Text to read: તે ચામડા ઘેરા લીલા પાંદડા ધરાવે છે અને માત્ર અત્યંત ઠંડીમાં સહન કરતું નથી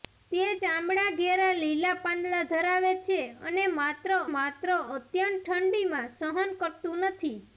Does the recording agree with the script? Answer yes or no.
no